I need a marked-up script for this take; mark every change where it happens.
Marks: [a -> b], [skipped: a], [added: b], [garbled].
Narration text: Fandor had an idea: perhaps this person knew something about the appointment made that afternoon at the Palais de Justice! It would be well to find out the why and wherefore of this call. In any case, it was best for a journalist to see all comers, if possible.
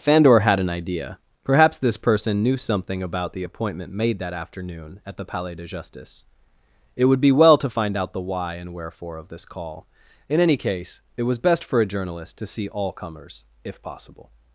Fandor had an idea: perhaps this person knew something about the appointment made that afternoon at the Palais de Justice! It would be well to find out the why and wherefore of this call. In any case, it was best for a journalist to see all comers, if possible.